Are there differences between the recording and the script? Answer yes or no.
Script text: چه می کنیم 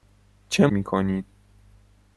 no